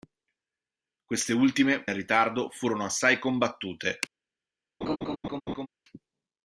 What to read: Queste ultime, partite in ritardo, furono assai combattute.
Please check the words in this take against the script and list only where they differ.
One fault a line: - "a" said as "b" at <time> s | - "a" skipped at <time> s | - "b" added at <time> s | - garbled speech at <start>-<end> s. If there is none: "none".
- "partite" skipped at 1.9 s